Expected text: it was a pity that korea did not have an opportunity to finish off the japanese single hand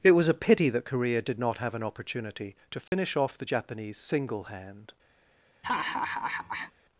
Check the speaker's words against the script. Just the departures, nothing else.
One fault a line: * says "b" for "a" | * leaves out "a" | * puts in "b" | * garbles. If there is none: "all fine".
all fine